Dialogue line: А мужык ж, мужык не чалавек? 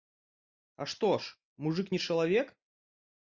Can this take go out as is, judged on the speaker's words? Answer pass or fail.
fail